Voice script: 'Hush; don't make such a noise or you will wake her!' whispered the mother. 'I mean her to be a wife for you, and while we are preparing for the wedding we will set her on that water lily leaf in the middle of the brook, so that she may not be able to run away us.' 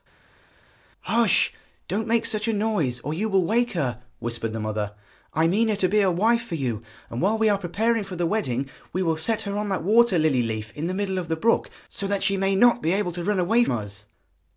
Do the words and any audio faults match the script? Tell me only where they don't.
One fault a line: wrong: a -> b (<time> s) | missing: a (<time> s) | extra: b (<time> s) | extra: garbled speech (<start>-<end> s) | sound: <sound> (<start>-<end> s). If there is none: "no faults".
no faults